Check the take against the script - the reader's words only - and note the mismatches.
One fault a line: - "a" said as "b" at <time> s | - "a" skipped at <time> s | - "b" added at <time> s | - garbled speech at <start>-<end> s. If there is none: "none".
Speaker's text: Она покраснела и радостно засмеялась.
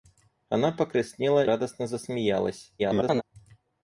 - "и" skipped at 1.4 s
- garbled speech at 2.8-3.2 s